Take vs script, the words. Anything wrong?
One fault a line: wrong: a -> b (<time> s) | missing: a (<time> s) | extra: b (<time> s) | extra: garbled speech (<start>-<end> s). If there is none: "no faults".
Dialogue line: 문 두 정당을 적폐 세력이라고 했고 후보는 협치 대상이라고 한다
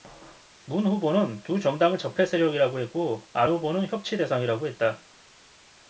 extra: 후보는 (0.8 s)
extra: 안 (3.3 s)
wrong: 한다 -> 했다 (4.7 s)